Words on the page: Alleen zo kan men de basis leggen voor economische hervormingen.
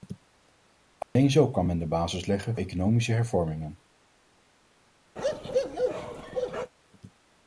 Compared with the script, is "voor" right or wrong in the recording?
wrong